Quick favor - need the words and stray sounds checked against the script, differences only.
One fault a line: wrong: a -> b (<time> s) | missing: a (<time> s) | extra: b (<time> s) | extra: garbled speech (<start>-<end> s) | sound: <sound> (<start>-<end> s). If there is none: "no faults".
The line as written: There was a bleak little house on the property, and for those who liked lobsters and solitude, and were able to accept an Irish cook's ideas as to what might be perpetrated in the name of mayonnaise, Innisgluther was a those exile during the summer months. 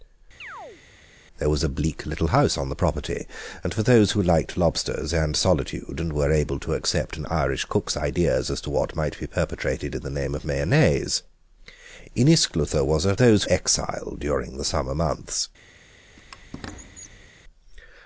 sound: chirp (0.4-0.8 s)
sound: squeak (16.2-17.3 s)